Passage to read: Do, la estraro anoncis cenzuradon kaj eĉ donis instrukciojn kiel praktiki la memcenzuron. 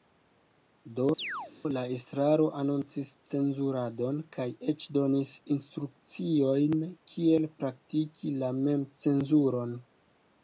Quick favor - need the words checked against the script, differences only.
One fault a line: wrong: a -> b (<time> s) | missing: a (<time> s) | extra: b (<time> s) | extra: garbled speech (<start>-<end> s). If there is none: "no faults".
no faults